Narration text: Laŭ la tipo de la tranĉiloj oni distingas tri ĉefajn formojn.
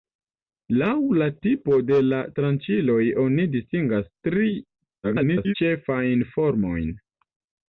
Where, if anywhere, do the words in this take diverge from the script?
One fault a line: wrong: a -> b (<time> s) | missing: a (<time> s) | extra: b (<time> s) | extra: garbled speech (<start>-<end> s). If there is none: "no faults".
extra: garbled speech (5.0-5.5 s)